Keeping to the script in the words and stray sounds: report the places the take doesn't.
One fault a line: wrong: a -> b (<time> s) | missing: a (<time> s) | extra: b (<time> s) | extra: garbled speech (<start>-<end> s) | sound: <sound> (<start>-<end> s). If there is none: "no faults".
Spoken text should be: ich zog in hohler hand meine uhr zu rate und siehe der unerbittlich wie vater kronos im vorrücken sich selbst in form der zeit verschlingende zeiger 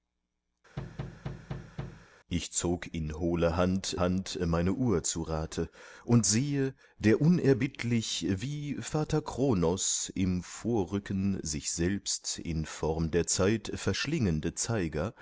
sound: thud (0.8-2.1 s)
extra: hand (4.0 s)